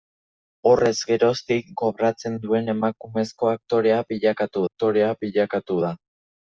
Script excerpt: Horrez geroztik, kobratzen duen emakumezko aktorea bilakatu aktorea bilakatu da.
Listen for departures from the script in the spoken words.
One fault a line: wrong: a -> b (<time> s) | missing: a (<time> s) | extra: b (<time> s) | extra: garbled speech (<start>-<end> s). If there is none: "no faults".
no faults